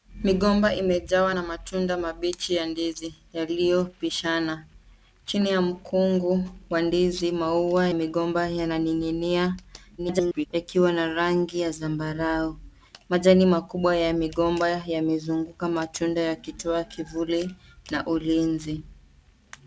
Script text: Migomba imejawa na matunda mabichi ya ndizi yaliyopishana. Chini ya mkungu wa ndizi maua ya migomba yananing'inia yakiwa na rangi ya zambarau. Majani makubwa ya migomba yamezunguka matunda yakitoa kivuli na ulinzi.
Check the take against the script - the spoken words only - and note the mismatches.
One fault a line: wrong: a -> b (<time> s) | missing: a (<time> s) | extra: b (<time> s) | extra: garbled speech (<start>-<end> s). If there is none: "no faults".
missing: ya (7.9 s)
extra: garbled speech (10.0-10.5 s)